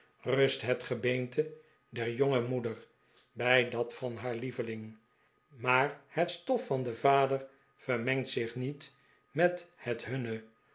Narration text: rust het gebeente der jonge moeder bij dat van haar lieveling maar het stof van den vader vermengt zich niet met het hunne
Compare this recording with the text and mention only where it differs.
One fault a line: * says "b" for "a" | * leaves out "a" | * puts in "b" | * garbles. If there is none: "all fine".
all fine